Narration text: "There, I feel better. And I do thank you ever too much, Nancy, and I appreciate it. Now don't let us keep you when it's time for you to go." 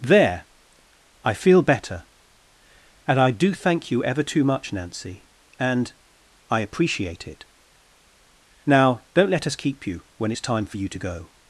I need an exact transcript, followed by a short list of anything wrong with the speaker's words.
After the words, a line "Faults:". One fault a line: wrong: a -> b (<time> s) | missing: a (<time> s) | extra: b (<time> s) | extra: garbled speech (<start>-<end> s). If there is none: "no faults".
"There, I feel better. And I do thank you ever too much, Nancy, and I appreciate it. Now don't let us keep you when it's time for you to go."
Faults:
no faults